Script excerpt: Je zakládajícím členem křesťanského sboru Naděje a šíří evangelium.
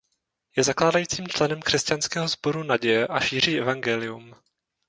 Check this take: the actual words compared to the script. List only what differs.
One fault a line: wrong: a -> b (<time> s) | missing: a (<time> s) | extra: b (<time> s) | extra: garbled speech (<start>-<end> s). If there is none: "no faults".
no faults